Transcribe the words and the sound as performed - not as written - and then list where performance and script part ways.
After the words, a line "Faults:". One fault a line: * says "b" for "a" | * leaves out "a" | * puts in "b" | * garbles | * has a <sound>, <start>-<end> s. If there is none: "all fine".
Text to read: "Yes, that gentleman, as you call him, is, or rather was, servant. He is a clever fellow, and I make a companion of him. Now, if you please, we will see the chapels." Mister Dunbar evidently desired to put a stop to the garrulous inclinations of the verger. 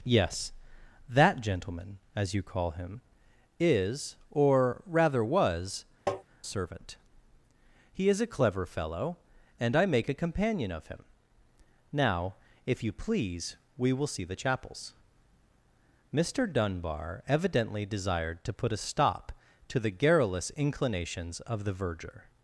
"Yes, that gentleman, as you call him, is, or rather was, servant. He is a clever fellow, and I make a companion of him. Now, if you please, we will see the chapels." Mister Dunbar evidently desired to put a stop to the garrulous inclinations of the verger.
Faults:
* has a tap, 6.1-6.2 s